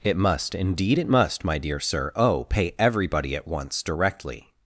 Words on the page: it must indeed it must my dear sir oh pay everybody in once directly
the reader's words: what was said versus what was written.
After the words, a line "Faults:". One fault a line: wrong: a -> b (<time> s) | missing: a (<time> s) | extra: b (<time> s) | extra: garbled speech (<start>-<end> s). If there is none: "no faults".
it must indeed it must my dear sir oh pay everybody at once directly
Faults:
wrong: in -> at (3.4 s)